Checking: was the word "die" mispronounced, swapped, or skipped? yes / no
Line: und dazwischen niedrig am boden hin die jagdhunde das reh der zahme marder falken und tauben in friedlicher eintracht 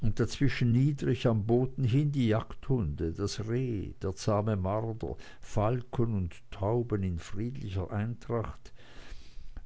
no